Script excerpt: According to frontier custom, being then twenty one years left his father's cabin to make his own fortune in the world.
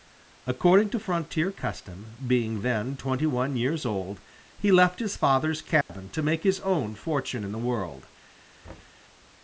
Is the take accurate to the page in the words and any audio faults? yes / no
no